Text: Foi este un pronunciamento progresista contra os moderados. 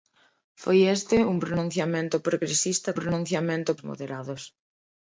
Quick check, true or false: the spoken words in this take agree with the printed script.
false